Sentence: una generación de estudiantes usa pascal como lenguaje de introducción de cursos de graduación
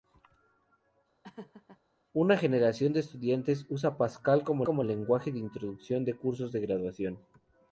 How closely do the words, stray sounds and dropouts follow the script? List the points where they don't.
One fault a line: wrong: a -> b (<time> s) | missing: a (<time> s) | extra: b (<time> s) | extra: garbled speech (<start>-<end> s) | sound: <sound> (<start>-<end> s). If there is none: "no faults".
sound: laugh (1.2-1.8 s)
extra: como (4.6 s)